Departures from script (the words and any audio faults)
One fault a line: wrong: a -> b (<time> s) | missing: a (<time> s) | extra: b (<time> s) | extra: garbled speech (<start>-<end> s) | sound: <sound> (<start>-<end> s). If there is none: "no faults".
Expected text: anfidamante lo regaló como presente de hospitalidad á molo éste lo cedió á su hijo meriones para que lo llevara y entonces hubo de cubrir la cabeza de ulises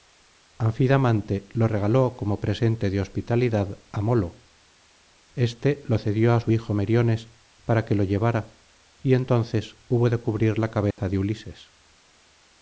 sound: dropout (10.9-11.0 s)